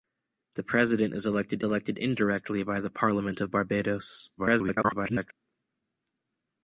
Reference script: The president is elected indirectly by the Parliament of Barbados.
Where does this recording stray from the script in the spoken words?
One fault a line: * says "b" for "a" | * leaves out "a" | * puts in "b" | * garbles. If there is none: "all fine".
* puts in "elected"
* garbles